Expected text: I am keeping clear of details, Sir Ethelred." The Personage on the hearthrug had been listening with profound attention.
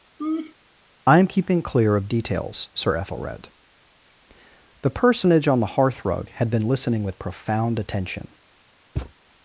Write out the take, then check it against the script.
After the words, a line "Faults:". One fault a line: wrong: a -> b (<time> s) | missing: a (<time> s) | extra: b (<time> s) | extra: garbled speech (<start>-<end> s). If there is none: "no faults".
I am keeping clear of details, Sir Ethelred." The Personage on the hearthrug had been listening with profound attention.
Faults:
no faults